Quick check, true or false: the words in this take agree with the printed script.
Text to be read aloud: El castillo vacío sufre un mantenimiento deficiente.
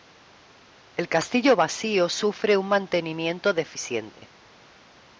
true